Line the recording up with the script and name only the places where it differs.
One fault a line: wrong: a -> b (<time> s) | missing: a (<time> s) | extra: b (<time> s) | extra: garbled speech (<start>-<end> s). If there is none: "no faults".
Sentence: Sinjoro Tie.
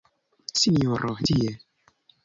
no faults